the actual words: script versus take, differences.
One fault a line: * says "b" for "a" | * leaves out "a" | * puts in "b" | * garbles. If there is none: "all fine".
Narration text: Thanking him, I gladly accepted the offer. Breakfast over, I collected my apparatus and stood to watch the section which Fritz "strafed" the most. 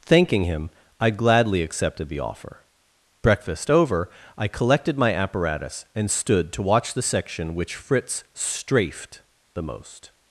all fine